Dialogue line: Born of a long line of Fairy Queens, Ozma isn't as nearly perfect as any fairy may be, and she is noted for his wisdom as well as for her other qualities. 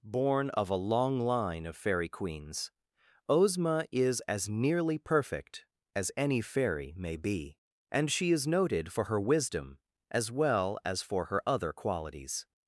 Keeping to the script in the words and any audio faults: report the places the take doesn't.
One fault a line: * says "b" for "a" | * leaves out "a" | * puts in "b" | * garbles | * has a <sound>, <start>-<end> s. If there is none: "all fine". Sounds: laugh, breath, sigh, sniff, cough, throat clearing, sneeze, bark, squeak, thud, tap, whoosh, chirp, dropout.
* says "is" for "isn't"
* says "her" for "his"